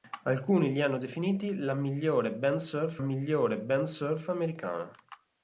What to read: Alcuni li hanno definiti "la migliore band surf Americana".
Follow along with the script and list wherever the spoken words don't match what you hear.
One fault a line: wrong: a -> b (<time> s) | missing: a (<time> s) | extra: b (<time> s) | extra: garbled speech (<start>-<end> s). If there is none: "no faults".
extra: migliore band surf (3.0 s)